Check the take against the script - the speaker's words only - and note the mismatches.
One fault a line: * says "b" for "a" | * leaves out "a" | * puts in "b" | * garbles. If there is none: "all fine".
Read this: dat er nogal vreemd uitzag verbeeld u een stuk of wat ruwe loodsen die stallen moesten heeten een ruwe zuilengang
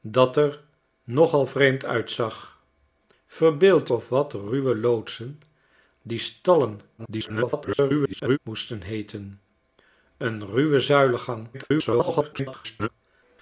* leaves out "u een stuk"
* garbles
* garbles